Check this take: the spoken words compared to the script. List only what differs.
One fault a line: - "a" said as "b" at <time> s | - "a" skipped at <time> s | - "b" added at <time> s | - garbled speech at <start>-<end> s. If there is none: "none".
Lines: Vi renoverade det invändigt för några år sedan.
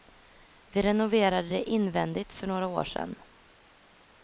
none